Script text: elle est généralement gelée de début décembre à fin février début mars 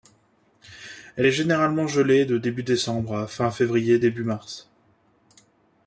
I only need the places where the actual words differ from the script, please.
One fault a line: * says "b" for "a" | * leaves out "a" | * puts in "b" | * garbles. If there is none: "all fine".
all fine